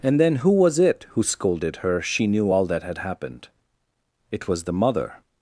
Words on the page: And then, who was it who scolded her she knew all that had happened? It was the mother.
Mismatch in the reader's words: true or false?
false